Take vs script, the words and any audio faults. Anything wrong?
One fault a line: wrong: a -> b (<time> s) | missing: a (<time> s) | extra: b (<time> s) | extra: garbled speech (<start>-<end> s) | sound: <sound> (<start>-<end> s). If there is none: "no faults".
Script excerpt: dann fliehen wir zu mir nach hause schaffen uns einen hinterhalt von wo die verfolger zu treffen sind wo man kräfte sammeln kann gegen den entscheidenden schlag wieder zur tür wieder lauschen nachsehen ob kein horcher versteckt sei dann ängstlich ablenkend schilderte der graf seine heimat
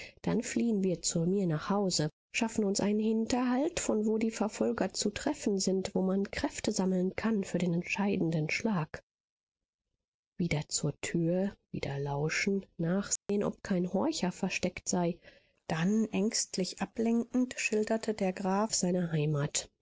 wrong: gegen -> für (7.4 s)
sound: dropout (13.2-13.3 s)